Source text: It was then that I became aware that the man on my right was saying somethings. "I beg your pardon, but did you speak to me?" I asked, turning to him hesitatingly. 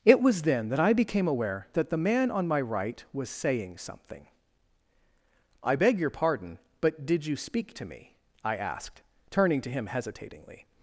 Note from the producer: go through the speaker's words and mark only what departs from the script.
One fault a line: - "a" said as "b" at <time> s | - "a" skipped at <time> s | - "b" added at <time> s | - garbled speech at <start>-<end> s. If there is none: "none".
- "somethings" said as "something" at 3.8 s